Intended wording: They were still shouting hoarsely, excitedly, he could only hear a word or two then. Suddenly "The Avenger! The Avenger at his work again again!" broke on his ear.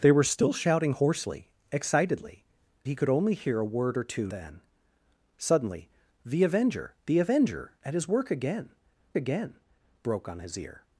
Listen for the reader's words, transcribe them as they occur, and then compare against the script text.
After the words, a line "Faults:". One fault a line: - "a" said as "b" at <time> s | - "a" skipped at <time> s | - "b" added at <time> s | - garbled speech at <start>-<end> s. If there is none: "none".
They were still shouting hoarsely, excitedly, he could only hear a word or two then. Suddenly "The Avenger! The Avenger at his work again again!" broke on his ear.
Faults:
none